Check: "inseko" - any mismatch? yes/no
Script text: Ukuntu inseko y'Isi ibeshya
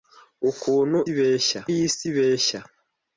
yes